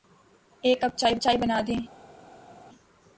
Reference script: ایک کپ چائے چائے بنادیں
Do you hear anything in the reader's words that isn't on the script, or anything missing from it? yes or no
no